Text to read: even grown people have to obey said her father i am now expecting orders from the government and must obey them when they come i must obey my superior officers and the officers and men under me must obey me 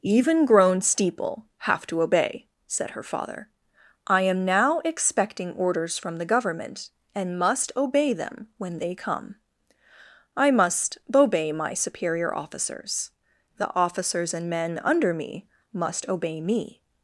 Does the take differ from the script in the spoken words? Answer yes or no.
yes